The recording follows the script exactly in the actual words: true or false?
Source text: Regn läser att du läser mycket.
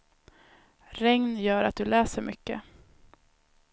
false